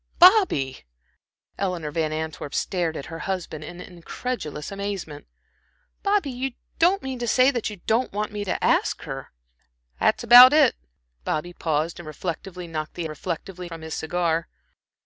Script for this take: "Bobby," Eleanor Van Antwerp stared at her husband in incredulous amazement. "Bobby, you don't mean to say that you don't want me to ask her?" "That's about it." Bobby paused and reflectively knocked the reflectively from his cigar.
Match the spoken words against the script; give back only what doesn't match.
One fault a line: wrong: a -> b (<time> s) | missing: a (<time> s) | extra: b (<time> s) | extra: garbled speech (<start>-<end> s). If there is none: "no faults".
no faults